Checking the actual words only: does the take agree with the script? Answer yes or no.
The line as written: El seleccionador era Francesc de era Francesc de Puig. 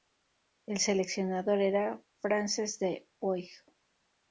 no